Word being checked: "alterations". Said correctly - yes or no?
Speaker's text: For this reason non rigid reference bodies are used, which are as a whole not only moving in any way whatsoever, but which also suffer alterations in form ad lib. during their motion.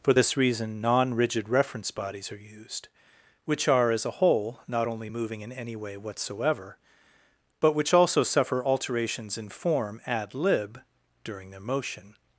yes